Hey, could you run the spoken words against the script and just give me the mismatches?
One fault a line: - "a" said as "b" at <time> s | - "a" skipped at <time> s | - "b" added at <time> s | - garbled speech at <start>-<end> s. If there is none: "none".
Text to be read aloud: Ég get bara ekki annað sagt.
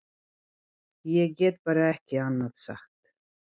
none